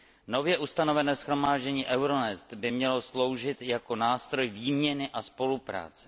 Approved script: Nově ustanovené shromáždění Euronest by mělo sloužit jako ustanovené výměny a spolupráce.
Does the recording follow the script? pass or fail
fail